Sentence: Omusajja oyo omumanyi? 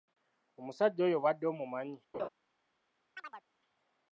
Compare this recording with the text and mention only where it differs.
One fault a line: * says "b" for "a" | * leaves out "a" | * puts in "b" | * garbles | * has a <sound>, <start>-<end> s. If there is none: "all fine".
* puts in "obadde"
* has a laugh, 2.1-2.3 s
* has a chirp, 3.2-3.4 s